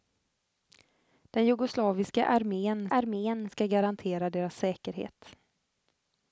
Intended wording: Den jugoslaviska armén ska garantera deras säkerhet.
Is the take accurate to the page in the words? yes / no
no